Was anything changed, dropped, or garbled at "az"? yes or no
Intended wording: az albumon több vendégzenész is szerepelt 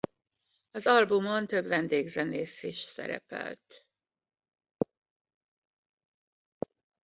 no